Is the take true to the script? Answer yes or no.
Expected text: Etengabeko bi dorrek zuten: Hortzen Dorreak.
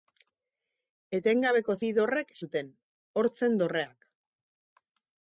yes